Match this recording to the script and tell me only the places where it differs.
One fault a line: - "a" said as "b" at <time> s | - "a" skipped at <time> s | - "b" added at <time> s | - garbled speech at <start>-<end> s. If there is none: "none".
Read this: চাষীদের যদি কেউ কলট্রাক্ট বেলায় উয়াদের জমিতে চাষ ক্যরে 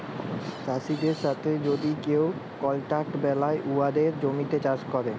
- "সাথে" added at 1.1 s